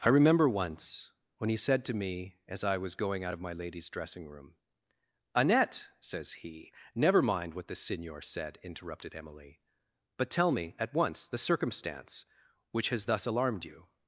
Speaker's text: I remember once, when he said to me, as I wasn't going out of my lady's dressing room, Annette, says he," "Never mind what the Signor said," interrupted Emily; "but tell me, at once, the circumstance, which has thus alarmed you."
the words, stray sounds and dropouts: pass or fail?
fail